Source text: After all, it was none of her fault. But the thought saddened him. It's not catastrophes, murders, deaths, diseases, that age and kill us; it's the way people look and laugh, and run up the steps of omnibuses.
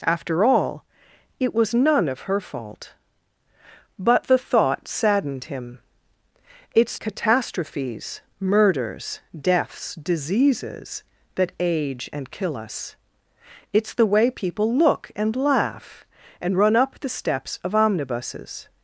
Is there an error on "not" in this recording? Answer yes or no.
yes